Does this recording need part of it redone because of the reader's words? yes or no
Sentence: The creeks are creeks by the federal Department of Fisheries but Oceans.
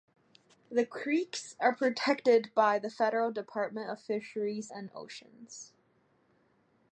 yes